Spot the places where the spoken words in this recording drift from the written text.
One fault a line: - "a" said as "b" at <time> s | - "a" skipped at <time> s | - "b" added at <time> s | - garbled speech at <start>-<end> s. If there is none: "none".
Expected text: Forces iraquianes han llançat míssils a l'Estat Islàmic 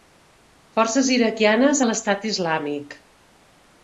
- "han llançat míssils" skipped at 1.8 s